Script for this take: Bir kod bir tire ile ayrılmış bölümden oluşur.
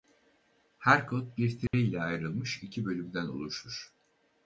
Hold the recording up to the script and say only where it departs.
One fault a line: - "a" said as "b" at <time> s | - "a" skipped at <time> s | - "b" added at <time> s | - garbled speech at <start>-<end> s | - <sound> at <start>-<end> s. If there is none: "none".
- "Bir" said as "Her" at 0.8 s
- dropout at 1.7-1.7 s
- "iki" added at 2.6 s